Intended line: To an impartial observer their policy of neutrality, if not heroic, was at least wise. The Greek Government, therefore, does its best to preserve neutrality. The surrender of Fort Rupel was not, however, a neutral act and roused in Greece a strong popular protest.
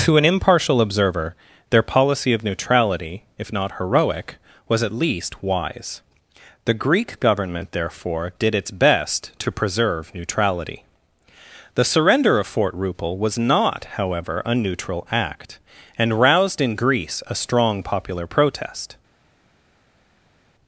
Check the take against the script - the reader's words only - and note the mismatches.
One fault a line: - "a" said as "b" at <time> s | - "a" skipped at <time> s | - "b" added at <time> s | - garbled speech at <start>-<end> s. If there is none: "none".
- "does" said as "did" at 8.4 s